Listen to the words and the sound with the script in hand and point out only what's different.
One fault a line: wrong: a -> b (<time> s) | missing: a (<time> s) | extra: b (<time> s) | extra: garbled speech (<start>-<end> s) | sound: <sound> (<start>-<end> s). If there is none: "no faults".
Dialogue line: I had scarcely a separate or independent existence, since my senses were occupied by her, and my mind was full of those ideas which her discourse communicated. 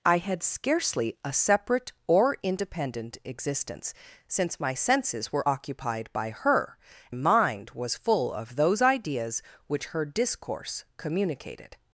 missing: and my (6.8 s)